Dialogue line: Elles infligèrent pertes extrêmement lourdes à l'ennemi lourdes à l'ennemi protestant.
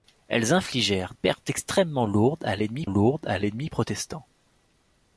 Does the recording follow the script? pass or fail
pass